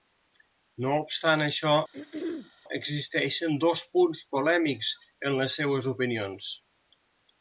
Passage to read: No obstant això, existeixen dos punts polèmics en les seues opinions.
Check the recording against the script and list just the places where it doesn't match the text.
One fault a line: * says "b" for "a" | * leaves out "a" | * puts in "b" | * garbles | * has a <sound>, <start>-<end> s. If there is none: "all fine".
* has a throat clearing, 1.9-2.5 s